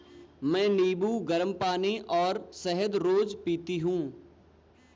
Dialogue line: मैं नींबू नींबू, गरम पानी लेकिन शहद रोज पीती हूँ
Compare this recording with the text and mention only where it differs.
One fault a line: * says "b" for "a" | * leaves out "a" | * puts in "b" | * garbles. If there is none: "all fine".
* leaves out "नींबू"
* says "और" for "लेकिन"